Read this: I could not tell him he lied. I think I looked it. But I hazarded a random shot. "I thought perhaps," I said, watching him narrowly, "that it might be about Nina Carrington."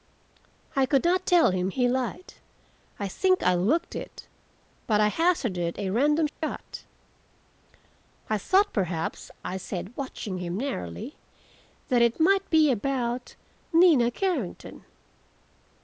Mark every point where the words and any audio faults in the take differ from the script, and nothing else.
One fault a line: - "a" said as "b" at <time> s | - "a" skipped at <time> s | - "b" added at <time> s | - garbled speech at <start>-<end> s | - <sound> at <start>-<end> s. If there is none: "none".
- dropout at 6.3-6.4 s